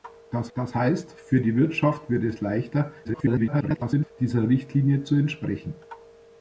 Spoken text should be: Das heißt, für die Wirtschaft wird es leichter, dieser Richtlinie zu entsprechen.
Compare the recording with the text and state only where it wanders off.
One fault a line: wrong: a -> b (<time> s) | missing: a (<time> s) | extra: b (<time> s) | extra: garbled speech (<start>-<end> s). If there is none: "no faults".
extra: das (0.5 s)
extra: garbled speech (3.0-4.1 s)